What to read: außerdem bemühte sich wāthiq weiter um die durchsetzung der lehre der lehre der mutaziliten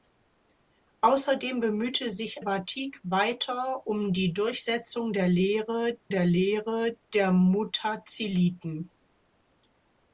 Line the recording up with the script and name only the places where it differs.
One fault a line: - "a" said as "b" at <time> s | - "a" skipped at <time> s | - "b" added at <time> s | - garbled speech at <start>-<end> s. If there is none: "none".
none